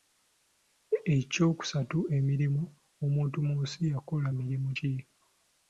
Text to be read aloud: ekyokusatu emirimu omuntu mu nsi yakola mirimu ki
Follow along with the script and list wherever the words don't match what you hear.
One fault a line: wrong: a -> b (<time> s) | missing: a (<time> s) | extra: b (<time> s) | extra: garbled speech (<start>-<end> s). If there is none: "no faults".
no faults